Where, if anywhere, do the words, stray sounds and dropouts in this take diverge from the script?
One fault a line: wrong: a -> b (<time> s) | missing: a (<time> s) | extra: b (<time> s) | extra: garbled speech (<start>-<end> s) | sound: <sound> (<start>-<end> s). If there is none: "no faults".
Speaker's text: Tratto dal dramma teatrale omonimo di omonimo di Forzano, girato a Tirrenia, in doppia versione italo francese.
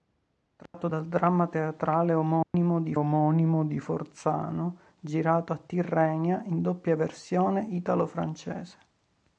sound: dropout (0.7-0.7 s)
sound: dropout (2.4-2.5 s)